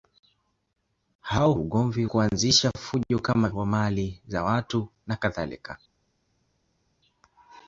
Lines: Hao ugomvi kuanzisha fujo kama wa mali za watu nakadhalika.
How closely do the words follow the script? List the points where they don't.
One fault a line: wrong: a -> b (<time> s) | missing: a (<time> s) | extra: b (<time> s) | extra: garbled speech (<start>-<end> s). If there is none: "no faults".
no faults